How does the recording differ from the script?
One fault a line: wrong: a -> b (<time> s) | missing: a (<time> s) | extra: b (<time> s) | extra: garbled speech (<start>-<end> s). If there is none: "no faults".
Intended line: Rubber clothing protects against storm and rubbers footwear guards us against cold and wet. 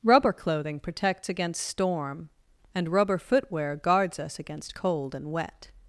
wrong: rubbers -> rubber (2.9 s)